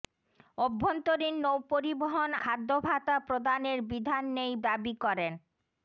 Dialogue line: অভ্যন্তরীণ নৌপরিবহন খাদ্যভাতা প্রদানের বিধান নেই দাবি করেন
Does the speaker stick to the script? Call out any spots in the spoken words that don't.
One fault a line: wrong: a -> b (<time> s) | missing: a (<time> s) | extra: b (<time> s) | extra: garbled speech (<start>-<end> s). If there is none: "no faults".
no faults